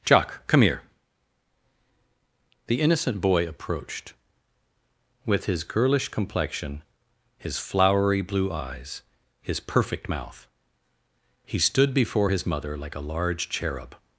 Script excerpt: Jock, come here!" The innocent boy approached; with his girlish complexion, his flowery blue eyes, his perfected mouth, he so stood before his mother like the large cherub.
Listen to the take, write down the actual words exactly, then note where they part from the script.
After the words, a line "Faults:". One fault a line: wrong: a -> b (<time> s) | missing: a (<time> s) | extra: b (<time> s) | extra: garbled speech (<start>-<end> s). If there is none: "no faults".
Jock, come here!" The innocent boy approached; with his girlish complexion, his flowery blue eyes, his perfect mouth, he stood before his mother like a large cherub.
Faults:
wrong: perfected -> perfect (9.6 s)
missing: so (11.6 s)
wrong: the -> a (13.0 s)